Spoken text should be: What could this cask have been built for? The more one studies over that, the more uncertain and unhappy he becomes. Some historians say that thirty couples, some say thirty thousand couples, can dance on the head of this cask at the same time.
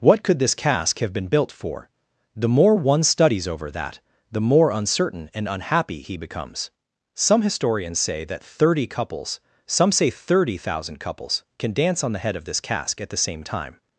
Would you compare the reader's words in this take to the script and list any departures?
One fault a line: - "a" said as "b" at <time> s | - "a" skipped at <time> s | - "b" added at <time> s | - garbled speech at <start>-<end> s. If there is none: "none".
none